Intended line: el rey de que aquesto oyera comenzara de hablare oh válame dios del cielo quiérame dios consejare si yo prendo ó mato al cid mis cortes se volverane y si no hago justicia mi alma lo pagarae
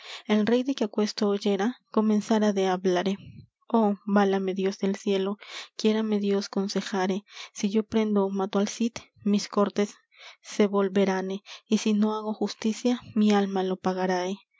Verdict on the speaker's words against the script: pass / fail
pass